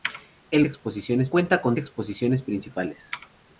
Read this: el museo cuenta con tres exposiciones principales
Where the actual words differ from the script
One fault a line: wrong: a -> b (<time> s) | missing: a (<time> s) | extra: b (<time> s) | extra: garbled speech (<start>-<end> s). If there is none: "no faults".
wrong: museo -> exposiciones (0.6 s)
missing: tres (1.8 s)